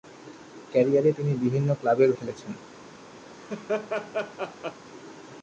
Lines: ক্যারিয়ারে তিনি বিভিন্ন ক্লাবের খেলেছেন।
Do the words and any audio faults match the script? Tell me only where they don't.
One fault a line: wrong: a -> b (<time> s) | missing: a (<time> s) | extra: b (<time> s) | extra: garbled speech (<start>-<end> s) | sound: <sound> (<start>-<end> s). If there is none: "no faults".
sound: laugh (3.3-4.8 s)